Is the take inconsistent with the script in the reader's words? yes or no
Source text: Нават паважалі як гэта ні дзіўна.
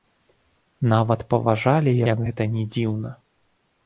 no